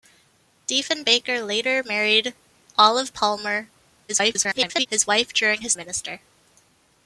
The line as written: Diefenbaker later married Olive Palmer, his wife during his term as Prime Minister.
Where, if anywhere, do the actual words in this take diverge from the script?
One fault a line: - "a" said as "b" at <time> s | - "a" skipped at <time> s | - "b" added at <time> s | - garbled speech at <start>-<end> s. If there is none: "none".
- garbled speech at 4.1-4.9 s
- "term as Prime" skipped at 5.7 s